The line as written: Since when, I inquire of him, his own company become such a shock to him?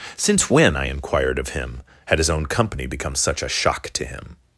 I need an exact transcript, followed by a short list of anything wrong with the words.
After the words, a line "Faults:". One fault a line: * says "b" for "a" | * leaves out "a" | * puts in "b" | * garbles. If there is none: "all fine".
Since when, I inquired of him, had his own company become such a shock to him?
Faults:
* says "inquired" for "inquire"
* puts in "had"